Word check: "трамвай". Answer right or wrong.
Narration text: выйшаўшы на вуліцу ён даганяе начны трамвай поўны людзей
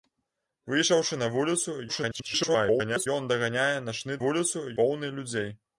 wrong